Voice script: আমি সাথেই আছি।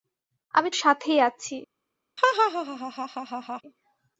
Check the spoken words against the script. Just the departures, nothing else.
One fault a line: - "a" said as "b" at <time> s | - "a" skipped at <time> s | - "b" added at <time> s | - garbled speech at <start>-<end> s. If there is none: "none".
none